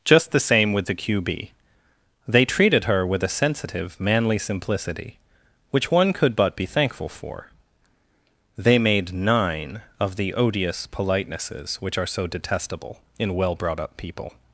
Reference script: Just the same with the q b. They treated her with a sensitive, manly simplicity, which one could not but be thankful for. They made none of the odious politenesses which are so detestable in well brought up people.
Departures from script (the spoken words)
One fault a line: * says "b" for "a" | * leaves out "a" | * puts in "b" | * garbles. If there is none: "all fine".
* leaves out "not"
* says "nine" for "none"